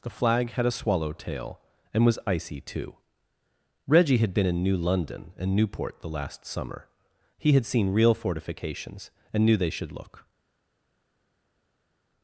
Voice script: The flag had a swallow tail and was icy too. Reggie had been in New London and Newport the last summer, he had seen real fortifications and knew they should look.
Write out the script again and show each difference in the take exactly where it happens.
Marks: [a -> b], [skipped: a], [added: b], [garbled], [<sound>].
The flag had a swallow tail and was icy too. Reggie had been in New London and Newport the last summer, he had seen real fortifications and knew they should look.